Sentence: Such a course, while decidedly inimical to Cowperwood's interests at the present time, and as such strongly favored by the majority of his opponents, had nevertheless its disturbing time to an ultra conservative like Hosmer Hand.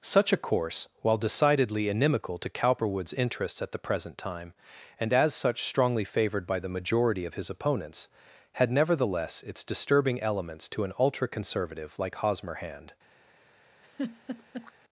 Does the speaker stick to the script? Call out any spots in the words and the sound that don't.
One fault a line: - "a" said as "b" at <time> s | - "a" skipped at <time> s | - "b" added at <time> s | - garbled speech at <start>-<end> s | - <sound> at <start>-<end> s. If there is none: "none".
- "time" said as "elements" at 10.2 s
- laugh at 13.8-14.7 s